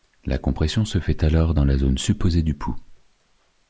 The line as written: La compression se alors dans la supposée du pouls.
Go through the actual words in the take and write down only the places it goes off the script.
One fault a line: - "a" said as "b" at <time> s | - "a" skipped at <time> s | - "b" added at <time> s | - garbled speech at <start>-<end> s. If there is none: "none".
- "fait" added at 1.0 s
- "zone" added at 1.8 s